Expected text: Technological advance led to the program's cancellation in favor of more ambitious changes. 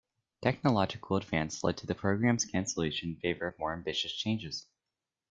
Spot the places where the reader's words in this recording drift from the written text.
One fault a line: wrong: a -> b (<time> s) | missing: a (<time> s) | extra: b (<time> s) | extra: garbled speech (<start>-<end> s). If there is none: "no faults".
no faults